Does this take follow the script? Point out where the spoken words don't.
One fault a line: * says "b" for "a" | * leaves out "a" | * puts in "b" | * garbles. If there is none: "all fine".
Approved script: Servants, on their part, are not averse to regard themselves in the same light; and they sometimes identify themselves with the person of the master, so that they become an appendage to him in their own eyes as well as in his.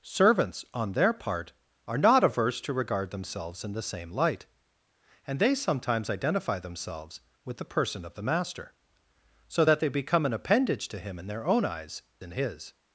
* leaves out "as well as"